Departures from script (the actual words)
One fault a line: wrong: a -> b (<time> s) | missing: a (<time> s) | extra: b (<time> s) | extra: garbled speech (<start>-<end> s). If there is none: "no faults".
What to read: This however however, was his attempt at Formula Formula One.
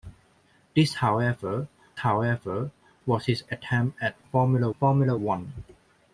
no faults